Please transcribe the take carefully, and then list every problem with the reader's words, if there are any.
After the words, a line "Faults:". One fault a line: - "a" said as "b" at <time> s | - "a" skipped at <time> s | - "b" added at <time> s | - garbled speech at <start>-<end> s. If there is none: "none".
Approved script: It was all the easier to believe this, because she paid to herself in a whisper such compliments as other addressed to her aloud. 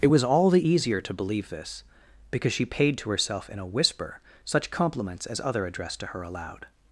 It was all the easier to believe this, because she paid to herself in a whisper such compliments as other addressed to her aloud.
Faults:
none